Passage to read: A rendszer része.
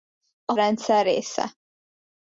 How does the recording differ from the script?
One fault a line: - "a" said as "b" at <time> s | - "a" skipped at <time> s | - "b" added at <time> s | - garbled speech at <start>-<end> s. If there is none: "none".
none